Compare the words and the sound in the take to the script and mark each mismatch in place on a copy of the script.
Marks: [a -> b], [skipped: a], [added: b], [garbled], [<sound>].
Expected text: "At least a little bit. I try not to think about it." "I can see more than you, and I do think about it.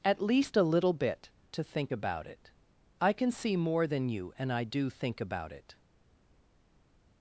"At least a little bit. [skipped: I try not] to think about it." "I can see more than you, and I do think about it.